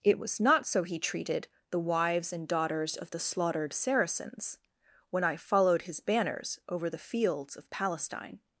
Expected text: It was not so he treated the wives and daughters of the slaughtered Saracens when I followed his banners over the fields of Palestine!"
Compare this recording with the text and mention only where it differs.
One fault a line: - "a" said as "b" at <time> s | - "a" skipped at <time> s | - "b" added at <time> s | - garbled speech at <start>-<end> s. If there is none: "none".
none